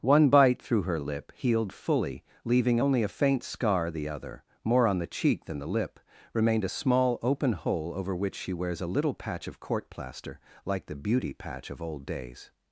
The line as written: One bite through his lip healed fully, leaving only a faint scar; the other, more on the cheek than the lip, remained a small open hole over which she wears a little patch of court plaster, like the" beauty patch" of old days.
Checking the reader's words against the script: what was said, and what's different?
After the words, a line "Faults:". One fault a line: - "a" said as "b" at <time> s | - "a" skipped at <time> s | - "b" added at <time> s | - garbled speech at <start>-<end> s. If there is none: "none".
One bite through her lip healed fully, leaving only a faint scar; the other, more on the cheek than the lip, remained a small open hole over which she wears a little patch of court plaster, like the" beauty patch" of old days.
Faults:
- "his" said as "her" at 0.8 s